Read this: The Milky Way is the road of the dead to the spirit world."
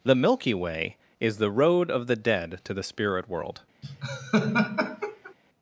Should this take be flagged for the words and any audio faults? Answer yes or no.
yes